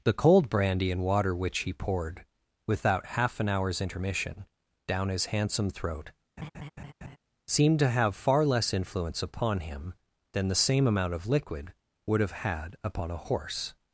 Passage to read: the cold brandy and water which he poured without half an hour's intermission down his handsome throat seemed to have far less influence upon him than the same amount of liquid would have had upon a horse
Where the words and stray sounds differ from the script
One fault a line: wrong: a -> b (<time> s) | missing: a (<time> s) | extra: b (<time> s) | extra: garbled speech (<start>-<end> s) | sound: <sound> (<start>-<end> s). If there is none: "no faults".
sound: laugh (6.4-7.2 s)